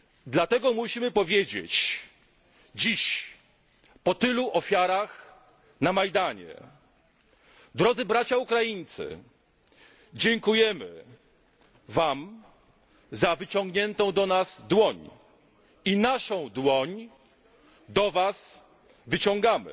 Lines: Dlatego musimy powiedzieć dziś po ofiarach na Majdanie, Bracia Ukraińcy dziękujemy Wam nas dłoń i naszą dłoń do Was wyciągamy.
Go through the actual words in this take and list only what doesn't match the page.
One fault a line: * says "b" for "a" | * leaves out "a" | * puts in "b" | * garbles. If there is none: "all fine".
* puts in "tylu"
* puts in "drodzy"
* puts in "za wyciągniętą do"